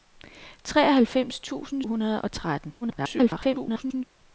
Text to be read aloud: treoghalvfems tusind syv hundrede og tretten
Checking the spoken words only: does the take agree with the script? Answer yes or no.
no